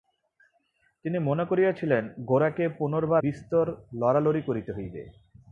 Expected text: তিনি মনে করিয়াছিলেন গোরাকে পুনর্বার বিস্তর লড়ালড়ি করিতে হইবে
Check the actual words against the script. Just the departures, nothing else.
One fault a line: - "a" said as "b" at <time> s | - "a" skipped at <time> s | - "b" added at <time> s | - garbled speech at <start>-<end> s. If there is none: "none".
none